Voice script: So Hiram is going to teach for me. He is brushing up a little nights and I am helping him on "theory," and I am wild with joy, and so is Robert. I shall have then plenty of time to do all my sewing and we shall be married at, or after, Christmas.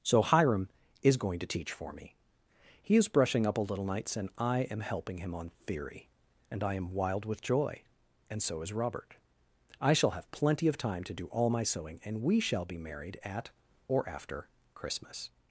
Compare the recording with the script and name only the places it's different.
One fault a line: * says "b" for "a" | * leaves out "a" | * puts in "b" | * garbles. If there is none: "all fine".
* leaves out "then"